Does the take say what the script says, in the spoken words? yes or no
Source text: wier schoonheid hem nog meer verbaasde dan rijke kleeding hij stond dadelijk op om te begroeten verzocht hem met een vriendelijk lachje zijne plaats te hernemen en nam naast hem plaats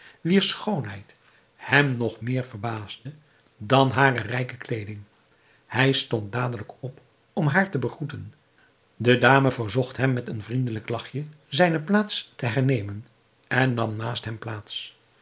no